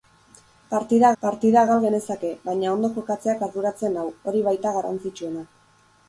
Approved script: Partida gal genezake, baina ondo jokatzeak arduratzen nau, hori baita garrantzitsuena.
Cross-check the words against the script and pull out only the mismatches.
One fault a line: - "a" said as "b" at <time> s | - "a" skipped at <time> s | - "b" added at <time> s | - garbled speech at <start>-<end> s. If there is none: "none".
- "partida" added at 1.2 s